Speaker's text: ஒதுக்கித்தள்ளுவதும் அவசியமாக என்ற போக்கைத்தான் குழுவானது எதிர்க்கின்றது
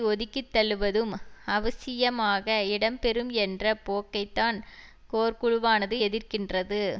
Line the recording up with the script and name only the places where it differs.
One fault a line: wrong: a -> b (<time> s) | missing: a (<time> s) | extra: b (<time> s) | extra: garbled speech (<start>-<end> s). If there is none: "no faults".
extra: இடம்பெறும் (2.7 s)
extra: கோர் (5.1 s)